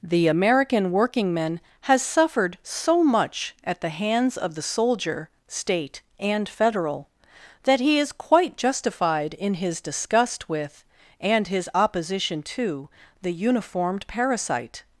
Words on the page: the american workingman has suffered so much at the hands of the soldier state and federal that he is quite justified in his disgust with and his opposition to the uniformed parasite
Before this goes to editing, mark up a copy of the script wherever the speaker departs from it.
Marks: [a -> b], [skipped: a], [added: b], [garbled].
the american workingman has suffered so much at the hands of the soldier state and federal that he is quite justified in his disgust with and his opposition to the uniformed parasite